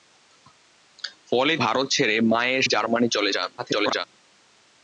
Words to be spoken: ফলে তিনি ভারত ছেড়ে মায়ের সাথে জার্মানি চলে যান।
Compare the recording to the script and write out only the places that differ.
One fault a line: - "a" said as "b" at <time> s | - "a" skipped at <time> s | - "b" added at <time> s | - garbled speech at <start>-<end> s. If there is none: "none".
- "তিনি" skipped at 1.5 s
- "সাথে" skipped at 2.7 s
- garbled speech at 3.6-4.0 s